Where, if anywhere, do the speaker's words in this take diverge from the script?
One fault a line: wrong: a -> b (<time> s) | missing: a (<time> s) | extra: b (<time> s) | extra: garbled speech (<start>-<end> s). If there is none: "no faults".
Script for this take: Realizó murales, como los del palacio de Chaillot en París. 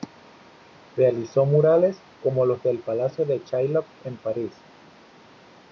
no faults